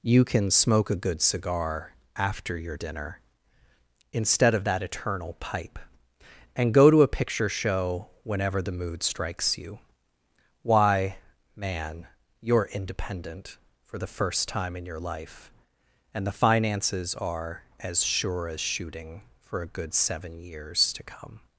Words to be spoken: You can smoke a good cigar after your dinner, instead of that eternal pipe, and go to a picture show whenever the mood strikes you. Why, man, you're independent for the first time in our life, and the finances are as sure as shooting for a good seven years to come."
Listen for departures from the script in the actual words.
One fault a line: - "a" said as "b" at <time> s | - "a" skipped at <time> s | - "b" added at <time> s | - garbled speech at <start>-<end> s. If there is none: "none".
- "our" said as "your" at 14.9 s